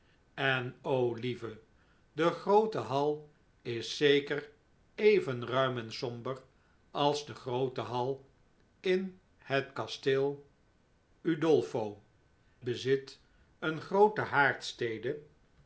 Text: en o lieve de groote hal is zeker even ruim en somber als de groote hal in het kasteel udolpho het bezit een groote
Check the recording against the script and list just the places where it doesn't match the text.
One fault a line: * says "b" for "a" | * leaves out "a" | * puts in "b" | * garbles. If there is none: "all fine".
* leaves out "het"